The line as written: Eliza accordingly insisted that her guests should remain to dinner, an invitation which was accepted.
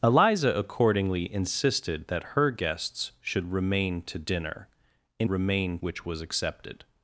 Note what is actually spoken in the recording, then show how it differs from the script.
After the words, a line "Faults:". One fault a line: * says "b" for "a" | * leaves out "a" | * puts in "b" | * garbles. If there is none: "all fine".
Eliza accordingly insisted that her guests should remain to dinner, an remain which was accepted.
Faults:
* says "remain" for "invitation"